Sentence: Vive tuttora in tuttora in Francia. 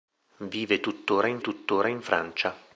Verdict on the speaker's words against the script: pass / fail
pass